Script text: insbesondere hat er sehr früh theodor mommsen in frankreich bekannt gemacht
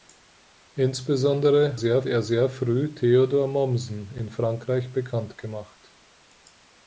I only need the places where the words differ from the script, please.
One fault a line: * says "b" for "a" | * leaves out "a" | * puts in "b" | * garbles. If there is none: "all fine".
* says "sehr" for "hat"